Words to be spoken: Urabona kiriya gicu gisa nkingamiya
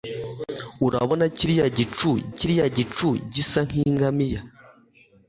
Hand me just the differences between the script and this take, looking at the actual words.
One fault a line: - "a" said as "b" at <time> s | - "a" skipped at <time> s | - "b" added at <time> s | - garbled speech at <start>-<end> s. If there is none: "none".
- "kiriya gicu" added at 2.4 s